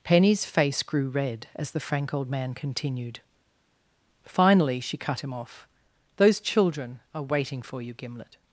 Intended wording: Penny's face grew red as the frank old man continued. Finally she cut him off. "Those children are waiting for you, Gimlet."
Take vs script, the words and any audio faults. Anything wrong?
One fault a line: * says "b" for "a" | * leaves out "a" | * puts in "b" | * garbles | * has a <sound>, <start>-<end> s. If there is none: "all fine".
all fine